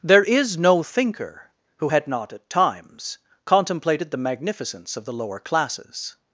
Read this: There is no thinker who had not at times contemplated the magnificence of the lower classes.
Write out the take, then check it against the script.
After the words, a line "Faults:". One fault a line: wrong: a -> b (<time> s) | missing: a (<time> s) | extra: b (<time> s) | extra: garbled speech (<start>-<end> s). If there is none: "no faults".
There is no thinker who had not at times contemplated the magnificence of the lower classes.
Faults:
no faults